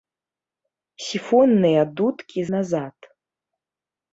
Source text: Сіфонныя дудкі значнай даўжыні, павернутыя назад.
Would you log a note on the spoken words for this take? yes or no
yes